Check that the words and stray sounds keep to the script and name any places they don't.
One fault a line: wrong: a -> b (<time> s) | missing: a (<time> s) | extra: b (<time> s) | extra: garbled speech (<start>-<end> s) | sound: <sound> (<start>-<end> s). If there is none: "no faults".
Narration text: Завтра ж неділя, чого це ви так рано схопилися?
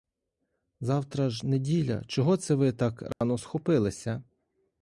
sound: dropout (3.1-3.2 s)